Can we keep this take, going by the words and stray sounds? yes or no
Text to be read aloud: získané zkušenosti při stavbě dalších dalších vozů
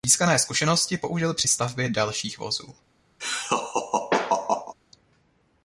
no